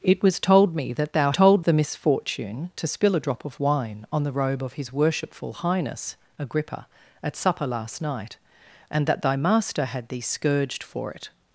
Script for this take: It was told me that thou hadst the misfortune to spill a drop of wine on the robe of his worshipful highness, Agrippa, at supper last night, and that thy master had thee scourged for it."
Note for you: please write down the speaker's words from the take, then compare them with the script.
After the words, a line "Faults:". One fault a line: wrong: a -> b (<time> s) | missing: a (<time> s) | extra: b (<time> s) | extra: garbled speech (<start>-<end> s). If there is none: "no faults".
It was told me that thou told the misfortune to spill a drop of wine on the robe of his worshipful highness, Agrippa, at supper last night, and that thy master had thee scourged for it."
Faults:
wrong: hadst -> told (1.3 s)